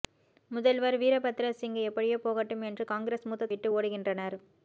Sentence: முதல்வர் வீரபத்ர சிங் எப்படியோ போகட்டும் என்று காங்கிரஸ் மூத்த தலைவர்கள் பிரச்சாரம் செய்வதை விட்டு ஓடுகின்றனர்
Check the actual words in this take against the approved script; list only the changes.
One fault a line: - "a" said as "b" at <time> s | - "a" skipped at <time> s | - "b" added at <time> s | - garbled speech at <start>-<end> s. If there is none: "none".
- "தலைவர்கள் பிரச்சாரம் செய்வதை" skipped at 3.5 s